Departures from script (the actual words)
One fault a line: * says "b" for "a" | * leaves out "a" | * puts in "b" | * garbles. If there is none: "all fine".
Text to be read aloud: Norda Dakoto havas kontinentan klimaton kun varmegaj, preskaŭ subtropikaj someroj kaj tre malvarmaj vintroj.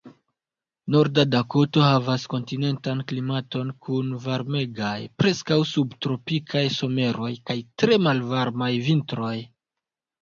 all fine